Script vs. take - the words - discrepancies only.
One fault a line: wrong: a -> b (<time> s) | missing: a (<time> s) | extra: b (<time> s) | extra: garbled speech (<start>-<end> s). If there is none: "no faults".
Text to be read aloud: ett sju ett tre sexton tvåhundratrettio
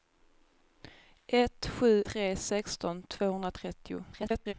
missing: ett (2.0 s)
extra: garbled speech (4.1-4.5 s)